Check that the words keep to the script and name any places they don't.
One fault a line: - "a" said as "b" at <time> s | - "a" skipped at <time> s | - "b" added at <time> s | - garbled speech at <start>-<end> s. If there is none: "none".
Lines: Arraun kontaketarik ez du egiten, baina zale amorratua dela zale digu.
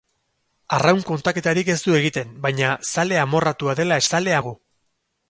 none